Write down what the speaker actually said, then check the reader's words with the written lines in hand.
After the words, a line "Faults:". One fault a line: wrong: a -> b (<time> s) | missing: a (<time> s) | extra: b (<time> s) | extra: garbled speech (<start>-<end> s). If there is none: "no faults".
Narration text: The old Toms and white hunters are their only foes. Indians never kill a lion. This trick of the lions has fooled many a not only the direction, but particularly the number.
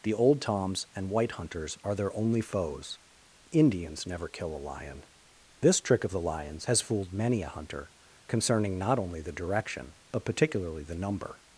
The old Toms and white hunters are their only foes. Indians never kill a lion. This trick of the lions has fooled many a hunter, concerning not only the direction, but particularly the number.
Faults:
extra: hunter concerning (7.5 s)